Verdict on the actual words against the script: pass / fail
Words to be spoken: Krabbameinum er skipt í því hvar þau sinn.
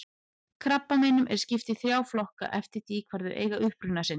fail